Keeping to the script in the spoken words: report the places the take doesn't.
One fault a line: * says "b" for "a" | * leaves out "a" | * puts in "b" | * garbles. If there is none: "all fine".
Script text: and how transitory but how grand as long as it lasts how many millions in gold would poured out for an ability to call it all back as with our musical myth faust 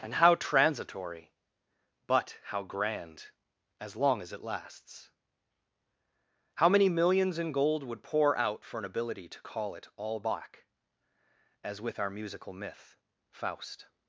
* says "pour" for "poured"